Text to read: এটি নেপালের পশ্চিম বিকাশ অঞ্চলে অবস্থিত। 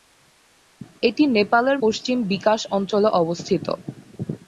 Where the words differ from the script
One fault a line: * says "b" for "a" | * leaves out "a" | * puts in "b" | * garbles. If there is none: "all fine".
all fine